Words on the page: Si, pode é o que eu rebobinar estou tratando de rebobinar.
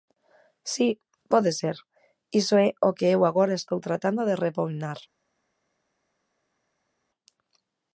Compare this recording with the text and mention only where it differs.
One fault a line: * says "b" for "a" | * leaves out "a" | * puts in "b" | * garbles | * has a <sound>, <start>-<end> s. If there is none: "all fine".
* puts in "ser iso"
* says "agora" for "rebobinar"